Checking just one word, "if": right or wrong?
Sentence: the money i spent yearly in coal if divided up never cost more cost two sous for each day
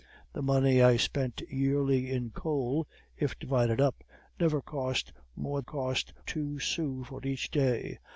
right